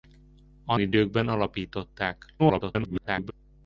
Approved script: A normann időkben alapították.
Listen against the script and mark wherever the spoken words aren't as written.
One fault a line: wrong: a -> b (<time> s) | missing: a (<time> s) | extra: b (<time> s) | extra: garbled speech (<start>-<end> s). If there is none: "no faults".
missing: normann (0.8 s)
extra: garbled speech (2.4-3.3 s)